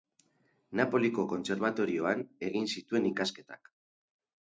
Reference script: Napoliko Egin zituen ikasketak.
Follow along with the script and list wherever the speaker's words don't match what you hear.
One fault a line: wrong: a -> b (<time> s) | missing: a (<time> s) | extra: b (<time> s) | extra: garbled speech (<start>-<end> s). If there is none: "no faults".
extra: Kontserbatorioan (1.3 s)